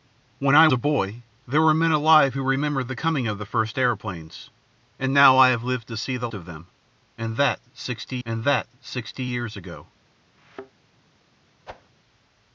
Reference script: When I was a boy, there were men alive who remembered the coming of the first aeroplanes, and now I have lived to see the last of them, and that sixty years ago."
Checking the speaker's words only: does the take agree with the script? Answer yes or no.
no